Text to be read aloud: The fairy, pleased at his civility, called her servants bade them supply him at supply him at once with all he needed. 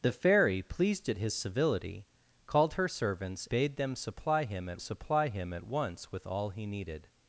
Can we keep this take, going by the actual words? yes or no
yes